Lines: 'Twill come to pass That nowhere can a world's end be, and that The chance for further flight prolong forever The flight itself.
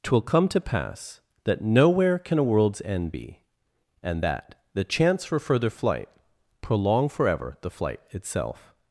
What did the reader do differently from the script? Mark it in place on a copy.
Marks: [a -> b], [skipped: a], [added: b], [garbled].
'Twill come to pass That nowhere can a world's end be, and that The chance for further flight prolong forever The flight itself.